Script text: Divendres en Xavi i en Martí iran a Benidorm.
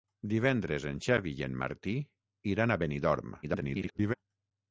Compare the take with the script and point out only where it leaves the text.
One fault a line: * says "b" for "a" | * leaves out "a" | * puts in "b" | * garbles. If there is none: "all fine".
* garbles